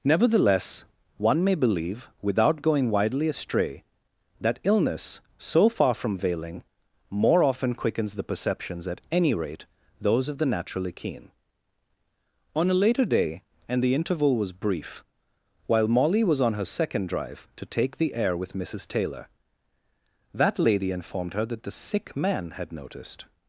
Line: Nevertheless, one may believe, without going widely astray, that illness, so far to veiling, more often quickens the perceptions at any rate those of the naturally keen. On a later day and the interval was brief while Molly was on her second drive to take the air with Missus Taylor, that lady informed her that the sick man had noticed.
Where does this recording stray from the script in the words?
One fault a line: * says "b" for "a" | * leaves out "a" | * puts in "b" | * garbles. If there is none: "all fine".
* says "from" for "to"